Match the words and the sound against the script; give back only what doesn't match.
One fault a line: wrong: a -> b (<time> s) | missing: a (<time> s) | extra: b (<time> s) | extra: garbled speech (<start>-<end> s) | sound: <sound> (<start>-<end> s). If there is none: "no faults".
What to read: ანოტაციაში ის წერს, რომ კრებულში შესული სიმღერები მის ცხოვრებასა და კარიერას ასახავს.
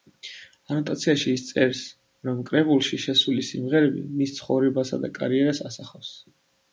no faults